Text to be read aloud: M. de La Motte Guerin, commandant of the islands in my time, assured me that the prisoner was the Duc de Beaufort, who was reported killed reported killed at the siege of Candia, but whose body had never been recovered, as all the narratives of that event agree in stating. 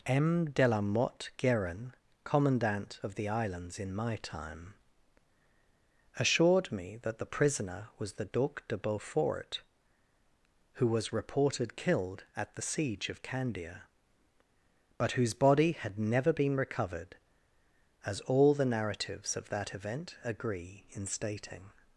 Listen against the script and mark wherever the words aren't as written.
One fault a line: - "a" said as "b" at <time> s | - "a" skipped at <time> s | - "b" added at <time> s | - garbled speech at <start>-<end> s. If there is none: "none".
- "reported killed" skipped at 12.2 s